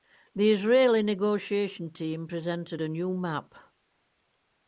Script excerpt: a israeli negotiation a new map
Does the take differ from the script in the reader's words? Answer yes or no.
yes